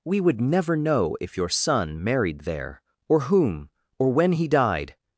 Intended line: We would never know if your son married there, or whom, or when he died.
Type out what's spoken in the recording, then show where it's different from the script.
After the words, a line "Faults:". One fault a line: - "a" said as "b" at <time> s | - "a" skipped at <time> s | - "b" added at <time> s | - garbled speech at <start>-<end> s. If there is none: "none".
We would never know if your son married there, or whom, or when he died.
Faults:
none